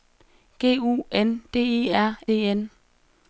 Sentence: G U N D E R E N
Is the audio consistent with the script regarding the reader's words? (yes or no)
yes